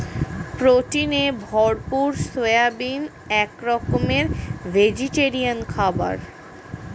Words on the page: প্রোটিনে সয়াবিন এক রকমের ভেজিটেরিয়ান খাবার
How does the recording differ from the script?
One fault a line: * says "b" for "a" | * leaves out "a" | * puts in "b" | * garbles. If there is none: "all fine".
* puts in "ভরপুর"